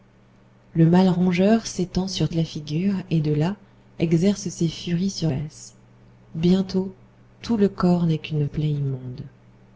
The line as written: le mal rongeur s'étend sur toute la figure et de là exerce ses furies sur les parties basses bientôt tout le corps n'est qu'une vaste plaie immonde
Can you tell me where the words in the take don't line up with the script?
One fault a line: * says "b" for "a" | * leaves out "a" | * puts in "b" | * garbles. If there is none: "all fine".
* leaves out "toute"
* leaves out "les parties"
* leaves out "vaste"